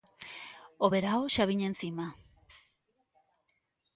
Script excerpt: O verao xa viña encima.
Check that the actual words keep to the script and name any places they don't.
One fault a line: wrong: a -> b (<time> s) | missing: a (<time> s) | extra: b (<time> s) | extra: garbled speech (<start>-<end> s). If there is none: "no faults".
no faults